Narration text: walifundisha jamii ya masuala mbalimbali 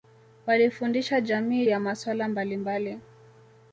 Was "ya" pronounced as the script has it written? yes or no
yes